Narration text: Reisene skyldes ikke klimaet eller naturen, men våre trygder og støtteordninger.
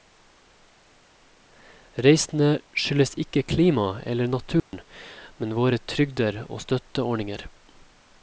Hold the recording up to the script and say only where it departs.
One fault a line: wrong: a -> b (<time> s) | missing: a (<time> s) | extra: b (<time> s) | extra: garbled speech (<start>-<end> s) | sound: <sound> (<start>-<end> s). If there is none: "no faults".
sound: dropout (4.6-4.7 s)